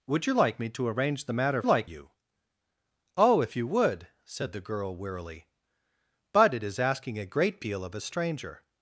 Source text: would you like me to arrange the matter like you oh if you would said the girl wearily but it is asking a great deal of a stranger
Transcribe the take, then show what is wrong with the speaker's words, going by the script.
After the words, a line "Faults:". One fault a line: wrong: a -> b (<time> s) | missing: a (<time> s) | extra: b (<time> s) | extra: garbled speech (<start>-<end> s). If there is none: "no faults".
would you like me to arrange the matter like you oh if you would said the girl wearily but it is asking a great deal of a stranger
Faults:
no faults